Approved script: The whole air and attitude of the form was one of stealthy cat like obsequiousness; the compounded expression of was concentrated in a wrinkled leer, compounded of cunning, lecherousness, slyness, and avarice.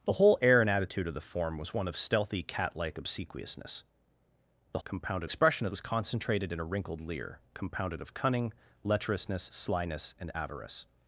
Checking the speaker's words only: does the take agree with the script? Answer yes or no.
yes